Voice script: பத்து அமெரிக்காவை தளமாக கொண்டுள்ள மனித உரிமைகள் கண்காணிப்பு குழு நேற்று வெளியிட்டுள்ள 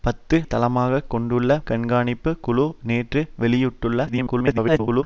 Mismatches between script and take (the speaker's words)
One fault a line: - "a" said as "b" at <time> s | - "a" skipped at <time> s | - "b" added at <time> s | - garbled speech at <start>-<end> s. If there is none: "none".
- "அமெரிக்காவை" skipped at 0.4 s
- "மனித உரிமைகள்" skipped at 1.6 s
- garbled speech at 4.1-5.0 s